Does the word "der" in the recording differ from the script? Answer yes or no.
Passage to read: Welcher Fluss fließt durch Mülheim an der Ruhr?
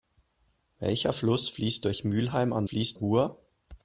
yes